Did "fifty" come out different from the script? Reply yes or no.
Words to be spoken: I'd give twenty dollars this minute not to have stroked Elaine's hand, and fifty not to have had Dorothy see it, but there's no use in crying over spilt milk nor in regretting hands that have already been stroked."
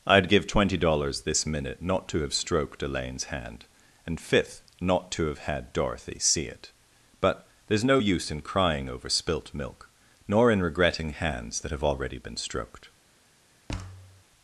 yes